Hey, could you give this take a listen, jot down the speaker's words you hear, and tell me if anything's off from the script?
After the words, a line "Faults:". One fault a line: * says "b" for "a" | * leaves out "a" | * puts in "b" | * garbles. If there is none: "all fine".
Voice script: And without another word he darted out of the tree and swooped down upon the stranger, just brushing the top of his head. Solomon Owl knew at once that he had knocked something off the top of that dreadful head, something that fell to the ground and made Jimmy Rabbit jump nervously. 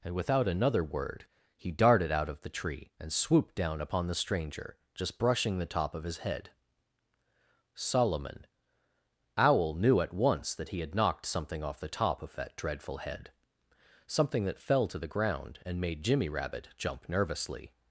And without another word he darted out of the tree and swooped down upon the stranger, just brushing the top of his head. Solomon Owl knew at once that he had knocked something off the top of that dreadful head, something that fell to the ground and made Jimmy Rabbit jump nervously.
Faults:
all fine